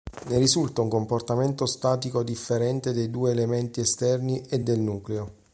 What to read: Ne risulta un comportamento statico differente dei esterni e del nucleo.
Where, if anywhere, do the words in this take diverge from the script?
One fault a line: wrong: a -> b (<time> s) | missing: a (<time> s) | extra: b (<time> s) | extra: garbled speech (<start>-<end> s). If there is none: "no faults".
extra: due elementi (3.1 s)